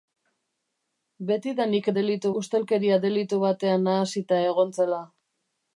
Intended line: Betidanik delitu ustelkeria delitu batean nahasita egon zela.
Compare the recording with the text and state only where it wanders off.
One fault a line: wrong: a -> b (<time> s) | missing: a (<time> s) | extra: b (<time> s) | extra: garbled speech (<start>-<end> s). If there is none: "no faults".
no faults